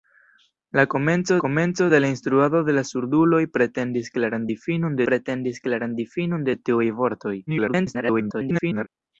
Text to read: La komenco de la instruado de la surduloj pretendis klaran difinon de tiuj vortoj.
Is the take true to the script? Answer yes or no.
no